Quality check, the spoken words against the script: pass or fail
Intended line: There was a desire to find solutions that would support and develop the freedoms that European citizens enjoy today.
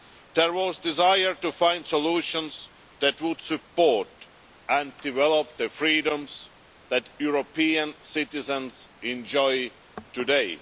pass